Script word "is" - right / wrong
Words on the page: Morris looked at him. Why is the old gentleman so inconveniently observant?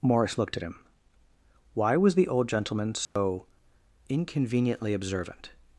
wrong